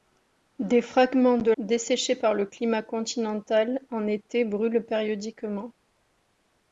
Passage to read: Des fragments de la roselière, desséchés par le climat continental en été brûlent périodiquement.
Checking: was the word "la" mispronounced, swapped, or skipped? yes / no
yes